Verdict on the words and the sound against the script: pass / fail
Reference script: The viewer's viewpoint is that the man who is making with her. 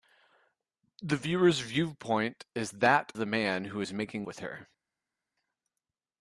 pass